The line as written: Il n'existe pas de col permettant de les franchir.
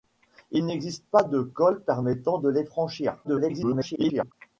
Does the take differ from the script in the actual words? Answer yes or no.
yes